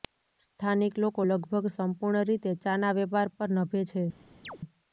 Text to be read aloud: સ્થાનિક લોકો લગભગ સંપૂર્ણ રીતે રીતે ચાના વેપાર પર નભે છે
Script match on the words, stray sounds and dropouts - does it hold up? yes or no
no